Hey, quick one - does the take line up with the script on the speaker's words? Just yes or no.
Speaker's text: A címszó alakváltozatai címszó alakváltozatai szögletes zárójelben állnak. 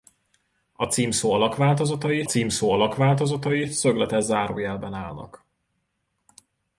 yes